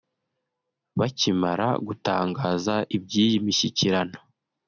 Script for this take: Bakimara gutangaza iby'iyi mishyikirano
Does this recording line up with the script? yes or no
yes